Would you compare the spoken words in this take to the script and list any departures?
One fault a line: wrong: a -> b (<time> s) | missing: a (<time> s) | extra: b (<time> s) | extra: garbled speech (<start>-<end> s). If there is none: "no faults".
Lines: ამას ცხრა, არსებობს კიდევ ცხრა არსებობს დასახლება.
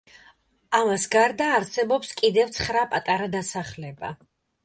wrong: ცხრა -> გარდა (1.1 s)
wrong: არსებობს -> პატარა (2.9 s)